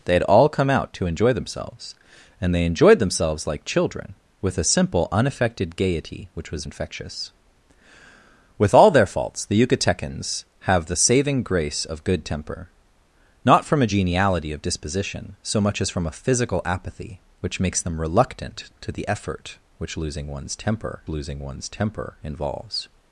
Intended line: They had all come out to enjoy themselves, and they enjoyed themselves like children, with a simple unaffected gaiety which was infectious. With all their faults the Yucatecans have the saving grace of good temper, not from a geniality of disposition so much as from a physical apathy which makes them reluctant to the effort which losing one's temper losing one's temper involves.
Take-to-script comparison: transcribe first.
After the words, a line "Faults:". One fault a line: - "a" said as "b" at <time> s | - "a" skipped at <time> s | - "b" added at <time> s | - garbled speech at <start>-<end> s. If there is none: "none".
They had all come out to enjoy themselves, and they enjoyed themselves like children, with a simple unaffected gaiety which was infectious. With all their faults the Yucatecans have the saving grace of good temper, not from a geniality of disposition so much as from a physical apathy which makes them reluctant to the effort which losing one's temper losing one's temper involves.
Faults:
none